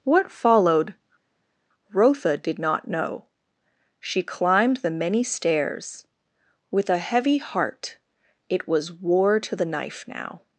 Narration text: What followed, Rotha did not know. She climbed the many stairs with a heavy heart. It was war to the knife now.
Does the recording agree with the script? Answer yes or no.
yes